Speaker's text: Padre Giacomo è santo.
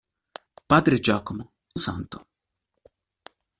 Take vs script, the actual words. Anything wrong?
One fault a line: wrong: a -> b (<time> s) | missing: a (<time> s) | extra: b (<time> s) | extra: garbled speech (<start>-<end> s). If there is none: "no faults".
no faults